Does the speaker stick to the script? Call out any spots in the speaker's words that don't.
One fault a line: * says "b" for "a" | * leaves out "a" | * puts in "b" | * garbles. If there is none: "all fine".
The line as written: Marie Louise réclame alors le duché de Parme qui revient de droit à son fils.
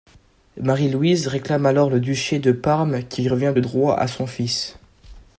all fine